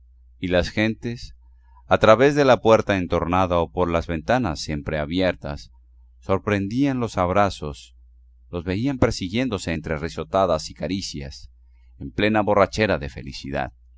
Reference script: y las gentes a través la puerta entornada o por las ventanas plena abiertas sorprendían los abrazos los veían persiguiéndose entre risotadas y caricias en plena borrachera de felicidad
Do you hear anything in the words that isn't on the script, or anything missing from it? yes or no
yes